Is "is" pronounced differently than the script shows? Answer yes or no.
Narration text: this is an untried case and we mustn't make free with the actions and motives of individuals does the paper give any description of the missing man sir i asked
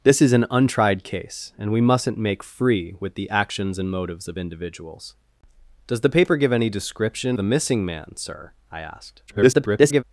no